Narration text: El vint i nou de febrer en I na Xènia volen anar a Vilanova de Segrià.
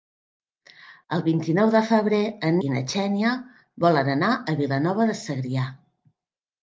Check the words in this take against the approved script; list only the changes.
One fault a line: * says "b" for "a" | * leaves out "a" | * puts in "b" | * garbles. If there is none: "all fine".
all fine